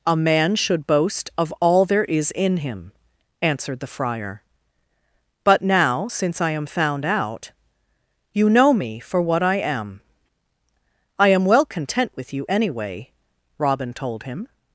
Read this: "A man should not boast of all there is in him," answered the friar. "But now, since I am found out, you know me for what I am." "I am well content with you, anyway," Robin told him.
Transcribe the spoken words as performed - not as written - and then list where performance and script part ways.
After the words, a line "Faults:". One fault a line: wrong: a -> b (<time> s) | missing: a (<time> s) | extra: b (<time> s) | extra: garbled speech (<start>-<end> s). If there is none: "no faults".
"A man should boast of all there is in him," answered the friar. "But now, since I am found out, you know me for what I am." "I am well content with you, anyway," Robin told him.
Faults:
missing: not (0.9 s)